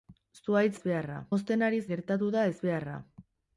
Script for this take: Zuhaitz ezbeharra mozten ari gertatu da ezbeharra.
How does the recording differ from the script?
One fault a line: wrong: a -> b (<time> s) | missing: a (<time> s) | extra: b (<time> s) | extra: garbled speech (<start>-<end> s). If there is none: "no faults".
no faults